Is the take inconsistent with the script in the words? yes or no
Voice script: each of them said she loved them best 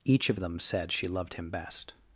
yes